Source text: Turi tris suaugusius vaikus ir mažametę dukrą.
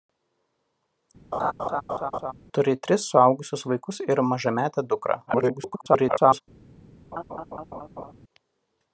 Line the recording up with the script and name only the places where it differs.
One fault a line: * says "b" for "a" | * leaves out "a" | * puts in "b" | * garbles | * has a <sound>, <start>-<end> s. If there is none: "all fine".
* has a laugh, 1.3-2.3 s
* garbles
* has a laugh, 7.1-8.1 s